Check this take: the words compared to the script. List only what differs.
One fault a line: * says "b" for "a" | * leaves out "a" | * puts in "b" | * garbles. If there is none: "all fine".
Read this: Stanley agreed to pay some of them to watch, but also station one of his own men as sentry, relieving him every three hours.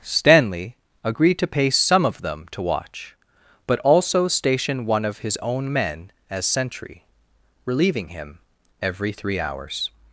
all fine